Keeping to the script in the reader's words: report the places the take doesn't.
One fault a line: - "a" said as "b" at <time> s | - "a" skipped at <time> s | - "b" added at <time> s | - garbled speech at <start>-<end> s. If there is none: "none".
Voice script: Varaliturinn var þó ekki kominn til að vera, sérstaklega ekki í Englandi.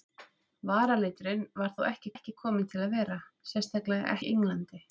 - "ekki" added at 2.1 s
- "ekki" skipped at 4.2 s